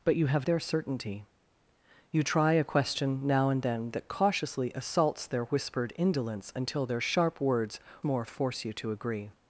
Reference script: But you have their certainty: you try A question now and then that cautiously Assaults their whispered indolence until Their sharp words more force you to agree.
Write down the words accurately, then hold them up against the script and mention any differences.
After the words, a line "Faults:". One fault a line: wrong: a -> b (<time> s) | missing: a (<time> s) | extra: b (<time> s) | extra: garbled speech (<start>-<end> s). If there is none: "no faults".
But you have their certainty: you try A question now and then that cautiously Assaults their whispered indolence until Their sharp words more force you to agree.
Faults:
no faults